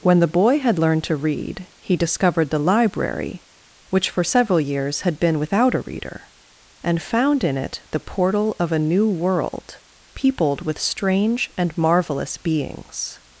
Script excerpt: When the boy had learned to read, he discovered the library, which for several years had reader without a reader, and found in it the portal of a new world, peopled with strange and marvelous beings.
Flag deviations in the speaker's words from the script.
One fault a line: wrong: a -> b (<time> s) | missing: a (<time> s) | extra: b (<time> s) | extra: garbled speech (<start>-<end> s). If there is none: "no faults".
wrong: reader -> been (5.2 s)